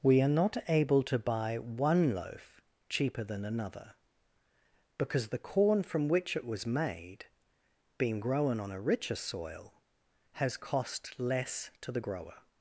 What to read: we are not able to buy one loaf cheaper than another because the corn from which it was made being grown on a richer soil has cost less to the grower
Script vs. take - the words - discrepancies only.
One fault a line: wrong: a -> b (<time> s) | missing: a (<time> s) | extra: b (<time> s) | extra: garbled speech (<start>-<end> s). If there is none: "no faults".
no faults